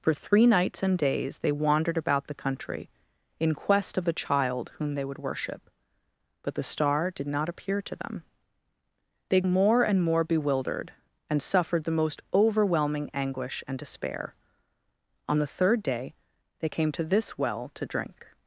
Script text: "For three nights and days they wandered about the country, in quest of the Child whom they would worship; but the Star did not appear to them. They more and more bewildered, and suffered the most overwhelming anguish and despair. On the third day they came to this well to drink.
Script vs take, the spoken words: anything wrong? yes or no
no